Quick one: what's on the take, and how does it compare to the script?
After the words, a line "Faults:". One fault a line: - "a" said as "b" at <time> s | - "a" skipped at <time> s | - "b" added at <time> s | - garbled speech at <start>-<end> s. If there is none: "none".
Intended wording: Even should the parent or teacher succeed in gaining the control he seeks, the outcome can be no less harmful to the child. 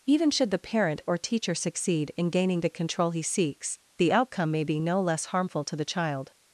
Even should the parent or teacher succeed in gaining the control he seeks, the outcome may be no less harmful to the child.
Faults:
- "can" said as "may" at 4.5 s